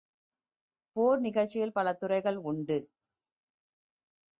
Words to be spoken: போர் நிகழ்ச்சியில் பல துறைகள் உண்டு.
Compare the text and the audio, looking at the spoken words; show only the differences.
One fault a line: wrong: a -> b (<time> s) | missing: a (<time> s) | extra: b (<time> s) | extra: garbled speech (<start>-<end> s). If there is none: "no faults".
no faults